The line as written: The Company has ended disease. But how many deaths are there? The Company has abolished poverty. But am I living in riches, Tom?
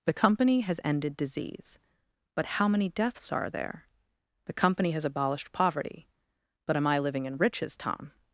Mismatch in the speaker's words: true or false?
false